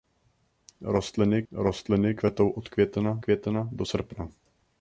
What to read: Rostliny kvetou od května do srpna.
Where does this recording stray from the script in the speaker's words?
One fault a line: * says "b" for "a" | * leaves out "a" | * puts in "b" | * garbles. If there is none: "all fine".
* puts in "rostliny"
* puts in "května"